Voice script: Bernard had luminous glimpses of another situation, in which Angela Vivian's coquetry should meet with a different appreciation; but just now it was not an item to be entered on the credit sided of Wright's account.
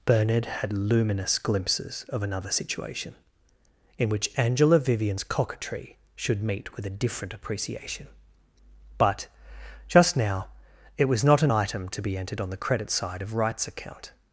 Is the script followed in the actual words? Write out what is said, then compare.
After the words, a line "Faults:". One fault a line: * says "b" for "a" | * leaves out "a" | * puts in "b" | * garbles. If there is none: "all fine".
Bernard had luminous glimpses of another situation, in which Angela Vivian's coquetry should meet with a different appreciation; but just now it was not an item to be entered on the credit side of Wright's account.
Faults:
* says "side" for "sided"